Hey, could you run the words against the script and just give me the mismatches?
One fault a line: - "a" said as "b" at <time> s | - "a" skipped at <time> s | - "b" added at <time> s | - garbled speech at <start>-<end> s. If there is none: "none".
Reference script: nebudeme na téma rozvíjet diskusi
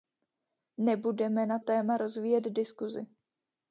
none